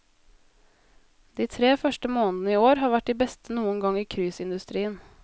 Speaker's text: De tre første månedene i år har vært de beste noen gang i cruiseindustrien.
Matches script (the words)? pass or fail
pass